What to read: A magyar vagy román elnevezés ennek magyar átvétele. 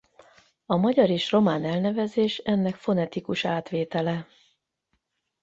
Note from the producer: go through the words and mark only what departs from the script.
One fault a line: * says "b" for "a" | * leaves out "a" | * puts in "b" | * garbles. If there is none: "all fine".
* says "és" for "vagy"
* says "fonetikus" for "magyar"